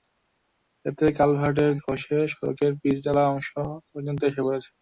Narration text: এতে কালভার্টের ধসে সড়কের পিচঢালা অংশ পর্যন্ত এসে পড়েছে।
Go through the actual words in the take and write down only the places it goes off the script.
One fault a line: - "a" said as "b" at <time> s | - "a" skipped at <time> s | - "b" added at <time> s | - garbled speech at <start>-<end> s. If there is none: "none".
none